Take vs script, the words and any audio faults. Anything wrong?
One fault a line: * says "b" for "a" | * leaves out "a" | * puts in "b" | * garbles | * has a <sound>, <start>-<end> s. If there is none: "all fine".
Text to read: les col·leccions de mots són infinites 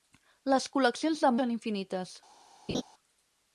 * leaves out "mots"
* has a laugh, 2.7-2.8 s